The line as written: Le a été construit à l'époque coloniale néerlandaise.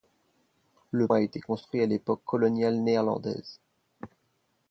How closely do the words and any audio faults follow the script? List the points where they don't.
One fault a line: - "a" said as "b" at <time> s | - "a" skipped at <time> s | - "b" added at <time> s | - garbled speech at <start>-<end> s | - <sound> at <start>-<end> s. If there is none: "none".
none